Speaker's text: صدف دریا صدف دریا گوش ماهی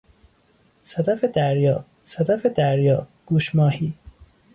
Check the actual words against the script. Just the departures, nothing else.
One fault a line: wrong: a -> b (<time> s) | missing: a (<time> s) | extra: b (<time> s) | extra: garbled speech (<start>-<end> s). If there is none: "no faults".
no faults